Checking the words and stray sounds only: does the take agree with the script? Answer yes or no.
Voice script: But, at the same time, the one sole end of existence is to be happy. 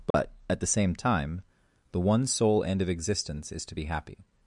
no